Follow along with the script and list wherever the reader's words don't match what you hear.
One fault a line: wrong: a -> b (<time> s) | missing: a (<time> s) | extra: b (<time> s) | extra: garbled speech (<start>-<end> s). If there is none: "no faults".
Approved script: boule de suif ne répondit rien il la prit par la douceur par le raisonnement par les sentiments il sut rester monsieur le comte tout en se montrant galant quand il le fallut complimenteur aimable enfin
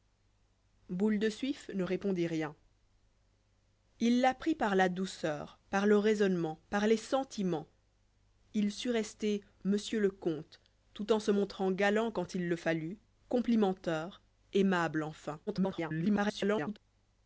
extra: garbled speech (15.5-16.8 s)